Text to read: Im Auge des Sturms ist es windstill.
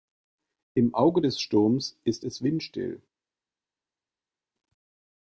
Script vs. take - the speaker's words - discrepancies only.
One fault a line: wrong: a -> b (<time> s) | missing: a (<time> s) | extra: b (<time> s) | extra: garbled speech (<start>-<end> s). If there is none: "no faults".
no faults